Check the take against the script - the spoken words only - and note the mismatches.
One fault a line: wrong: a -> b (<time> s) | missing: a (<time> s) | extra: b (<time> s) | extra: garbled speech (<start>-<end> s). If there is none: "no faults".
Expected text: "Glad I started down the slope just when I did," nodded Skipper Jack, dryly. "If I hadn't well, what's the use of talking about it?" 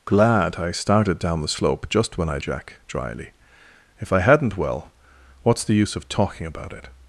missing: did nodded Skipper (2.4 s)